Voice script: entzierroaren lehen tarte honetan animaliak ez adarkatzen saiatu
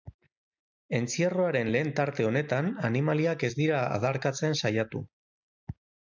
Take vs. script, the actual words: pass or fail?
fail